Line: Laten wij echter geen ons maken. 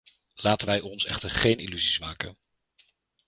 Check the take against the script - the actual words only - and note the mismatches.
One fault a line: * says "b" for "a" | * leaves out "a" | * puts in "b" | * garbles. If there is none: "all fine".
* puts in "ons"
* says "illusies" for "ons"